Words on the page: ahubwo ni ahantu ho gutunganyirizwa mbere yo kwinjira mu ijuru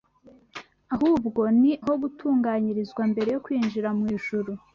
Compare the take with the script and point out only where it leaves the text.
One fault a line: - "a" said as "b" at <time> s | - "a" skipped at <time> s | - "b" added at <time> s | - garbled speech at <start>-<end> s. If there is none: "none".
- "ahantu" skipped at 1.7 s